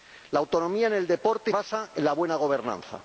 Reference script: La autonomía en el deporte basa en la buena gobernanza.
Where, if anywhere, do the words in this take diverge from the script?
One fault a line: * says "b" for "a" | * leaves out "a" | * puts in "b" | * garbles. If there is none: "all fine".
all fine